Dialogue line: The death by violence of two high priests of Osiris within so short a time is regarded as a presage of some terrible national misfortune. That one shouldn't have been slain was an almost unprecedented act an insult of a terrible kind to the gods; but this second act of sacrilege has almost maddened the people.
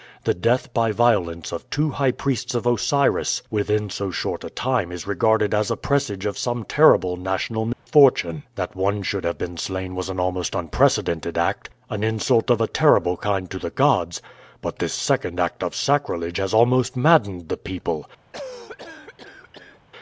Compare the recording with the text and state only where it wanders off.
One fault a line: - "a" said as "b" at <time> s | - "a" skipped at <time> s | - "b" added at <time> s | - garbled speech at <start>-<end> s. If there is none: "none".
- "shouldn't" said as "should" at 9.0 s